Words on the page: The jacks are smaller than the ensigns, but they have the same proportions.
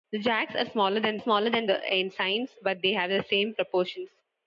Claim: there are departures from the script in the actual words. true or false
true